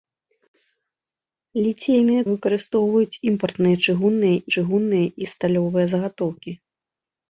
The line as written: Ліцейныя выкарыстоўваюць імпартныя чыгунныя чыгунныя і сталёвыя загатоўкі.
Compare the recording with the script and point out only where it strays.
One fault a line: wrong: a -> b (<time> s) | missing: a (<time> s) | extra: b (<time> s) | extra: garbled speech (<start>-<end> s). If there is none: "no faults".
no faults